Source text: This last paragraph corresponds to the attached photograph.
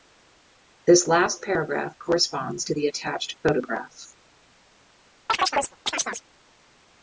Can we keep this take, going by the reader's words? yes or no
yes